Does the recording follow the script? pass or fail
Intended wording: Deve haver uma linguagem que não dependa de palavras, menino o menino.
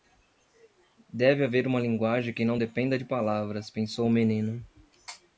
fail